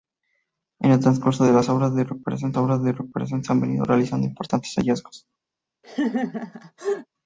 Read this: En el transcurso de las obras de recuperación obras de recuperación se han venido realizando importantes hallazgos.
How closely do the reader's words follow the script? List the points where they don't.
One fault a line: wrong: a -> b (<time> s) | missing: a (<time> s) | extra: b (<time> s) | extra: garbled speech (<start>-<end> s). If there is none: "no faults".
no faults